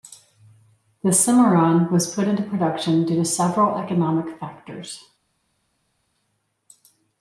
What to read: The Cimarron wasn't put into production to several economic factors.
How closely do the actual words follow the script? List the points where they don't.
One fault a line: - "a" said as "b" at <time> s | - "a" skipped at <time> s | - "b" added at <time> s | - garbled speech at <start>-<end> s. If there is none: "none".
- "wasn't" said as "was" at 1.9 s
- "due" added at 3.0 s